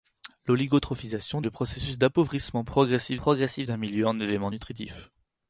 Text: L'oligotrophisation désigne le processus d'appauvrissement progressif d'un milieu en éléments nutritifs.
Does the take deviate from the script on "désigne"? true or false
true